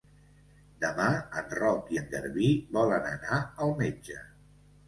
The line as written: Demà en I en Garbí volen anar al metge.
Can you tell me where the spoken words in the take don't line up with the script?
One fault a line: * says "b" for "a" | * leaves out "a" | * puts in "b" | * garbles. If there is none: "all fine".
* puts in "Roc"